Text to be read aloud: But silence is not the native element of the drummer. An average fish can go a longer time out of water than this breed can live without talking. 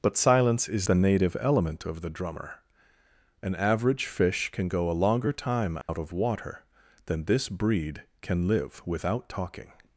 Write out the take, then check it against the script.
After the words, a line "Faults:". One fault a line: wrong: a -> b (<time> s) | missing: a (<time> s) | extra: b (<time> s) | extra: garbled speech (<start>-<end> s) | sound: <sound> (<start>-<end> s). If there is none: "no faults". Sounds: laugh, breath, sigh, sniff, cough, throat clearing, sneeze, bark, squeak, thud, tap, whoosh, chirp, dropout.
But silence is the native element of the drummer. An average fish can go a longer time out of water than this breed can live without talking.
Faults:
missing: not (0.9 s)
sound: dropout (5.8-5.9 s)